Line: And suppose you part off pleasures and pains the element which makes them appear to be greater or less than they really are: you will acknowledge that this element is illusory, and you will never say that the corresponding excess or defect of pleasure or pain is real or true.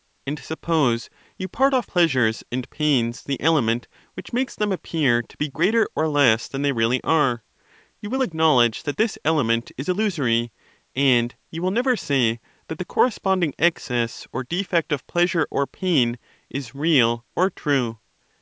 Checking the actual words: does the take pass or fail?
pass